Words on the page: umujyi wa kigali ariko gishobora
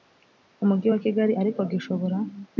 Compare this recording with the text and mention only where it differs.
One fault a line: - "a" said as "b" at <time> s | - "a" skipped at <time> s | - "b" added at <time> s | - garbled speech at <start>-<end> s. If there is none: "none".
none